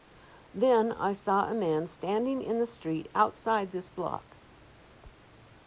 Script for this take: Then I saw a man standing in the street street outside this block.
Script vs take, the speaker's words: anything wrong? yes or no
yes